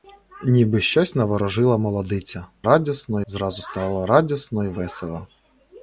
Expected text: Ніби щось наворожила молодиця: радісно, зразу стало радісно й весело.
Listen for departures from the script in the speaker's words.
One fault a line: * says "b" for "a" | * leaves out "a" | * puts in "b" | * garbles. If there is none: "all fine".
all fine